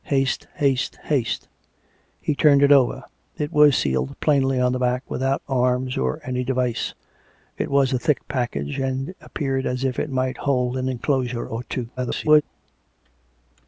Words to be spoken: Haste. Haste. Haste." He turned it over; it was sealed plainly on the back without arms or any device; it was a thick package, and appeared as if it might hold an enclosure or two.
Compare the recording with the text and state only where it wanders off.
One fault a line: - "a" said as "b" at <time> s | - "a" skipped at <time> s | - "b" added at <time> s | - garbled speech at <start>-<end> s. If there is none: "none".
- garbled speech at 12.0-12.4 s